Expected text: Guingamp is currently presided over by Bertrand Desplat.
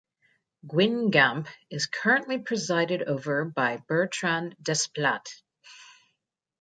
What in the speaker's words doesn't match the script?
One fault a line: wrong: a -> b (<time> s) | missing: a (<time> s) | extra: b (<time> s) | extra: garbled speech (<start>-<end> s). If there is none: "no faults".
no faults